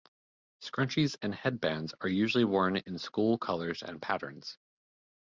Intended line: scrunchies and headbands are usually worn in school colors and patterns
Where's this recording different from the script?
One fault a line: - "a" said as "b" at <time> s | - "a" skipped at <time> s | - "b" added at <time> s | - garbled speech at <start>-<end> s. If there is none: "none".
none